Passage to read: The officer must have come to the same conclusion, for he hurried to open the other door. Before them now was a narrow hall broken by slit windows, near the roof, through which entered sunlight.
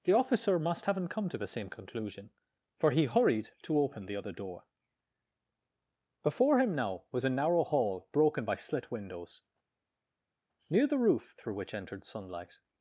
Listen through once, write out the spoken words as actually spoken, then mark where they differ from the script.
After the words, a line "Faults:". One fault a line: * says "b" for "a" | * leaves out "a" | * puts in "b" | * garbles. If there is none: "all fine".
The officer must haven't come to the same conclusion, for he hurried to open the other door. Before him now was a narrow hall broken by slit windows, near the roof, through which entered sunlight.
Faults:
* says "haven't" for "have"
* says "him" for "them"